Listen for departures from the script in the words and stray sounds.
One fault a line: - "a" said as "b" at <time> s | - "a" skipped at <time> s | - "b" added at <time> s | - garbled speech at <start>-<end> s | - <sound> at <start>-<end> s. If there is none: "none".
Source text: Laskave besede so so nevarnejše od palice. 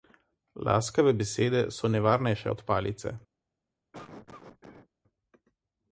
- "so" skipped at 1.9 s
- cough at 3.9-4.9 s